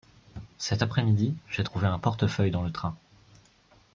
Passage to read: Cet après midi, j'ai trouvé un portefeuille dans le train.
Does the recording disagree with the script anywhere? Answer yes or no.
no